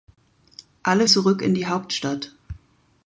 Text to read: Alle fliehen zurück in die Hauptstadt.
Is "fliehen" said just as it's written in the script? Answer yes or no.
no